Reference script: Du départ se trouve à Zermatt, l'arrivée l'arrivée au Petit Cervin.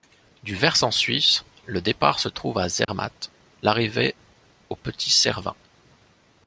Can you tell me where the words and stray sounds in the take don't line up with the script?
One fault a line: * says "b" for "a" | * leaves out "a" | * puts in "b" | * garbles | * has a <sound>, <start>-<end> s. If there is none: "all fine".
* puts in "versant suisse le"
* has a dropout, 2.8-2.9 s
* leaves out "l'arrivée"